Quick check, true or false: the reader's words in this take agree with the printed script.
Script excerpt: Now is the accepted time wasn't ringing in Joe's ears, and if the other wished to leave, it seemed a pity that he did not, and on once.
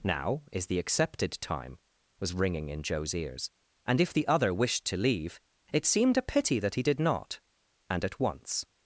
false